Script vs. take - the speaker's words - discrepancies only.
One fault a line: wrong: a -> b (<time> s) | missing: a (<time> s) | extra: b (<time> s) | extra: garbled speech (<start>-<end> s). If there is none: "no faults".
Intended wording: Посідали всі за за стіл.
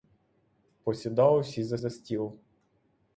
no faults